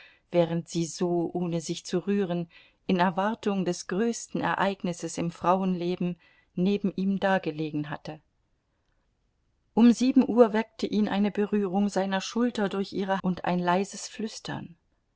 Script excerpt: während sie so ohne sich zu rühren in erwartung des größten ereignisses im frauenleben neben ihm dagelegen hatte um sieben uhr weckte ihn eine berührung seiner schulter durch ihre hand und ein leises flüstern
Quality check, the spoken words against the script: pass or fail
fail